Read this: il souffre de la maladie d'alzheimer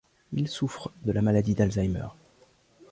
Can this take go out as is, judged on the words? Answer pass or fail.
pass